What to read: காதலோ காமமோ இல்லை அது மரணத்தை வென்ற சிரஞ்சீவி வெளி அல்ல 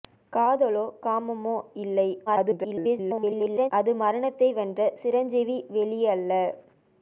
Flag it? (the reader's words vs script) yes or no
yes